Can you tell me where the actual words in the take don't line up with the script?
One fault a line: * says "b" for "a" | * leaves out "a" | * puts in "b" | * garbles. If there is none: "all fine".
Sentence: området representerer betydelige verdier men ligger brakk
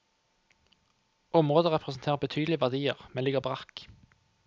all fine